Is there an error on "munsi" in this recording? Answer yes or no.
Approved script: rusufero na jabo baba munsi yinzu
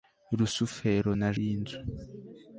yes